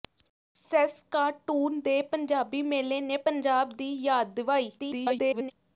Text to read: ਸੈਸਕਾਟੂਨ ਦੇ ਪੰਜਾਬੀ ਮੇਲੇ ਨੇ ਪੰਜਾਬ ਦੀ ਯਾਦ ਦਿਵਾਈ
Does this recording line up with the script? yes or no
no